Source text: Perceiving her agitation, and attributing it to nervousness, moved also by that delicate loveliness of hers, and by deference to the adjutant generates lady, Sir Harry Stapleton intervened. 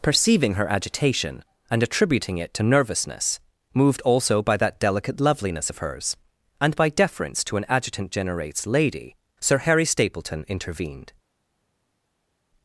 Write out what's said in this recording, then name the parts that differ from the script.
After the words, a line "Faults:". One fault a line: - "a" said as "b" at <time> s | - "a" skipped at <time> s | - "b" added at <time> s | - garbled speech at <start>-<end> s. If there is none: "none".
Perceiving her agitation, and attributing it to nervousness, moved also by that delicate loveliness of hers, and by deference to an adjutant generates lady, Sir Harry Stapleton intervened.
Faults:
- "the" said as "an" at 7.6 s